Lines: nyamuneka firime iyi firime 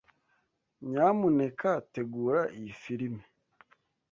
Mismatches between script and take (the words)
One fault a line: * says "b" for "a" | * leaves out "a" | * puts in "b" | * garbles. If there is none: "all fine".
* says "tegura" for "firime"